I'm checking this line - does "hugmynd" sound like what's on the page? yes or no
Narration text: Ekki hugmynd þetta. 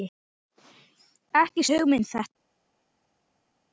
yes